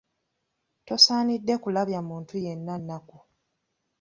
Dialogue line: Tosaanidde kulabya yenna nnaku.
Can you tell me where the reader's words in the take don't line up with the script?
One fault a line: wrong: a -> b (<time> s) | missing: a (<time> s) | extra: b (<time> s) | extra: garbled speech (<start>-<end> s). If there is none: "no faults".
extra: muntu (2.1 s)